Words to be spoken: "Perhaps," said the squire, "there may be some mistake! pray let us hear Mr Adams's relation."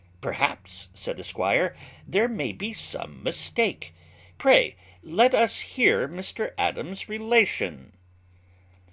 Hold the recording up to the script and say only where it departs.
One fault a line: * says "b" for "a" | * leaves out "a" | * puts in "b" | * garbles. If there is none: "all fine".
all fine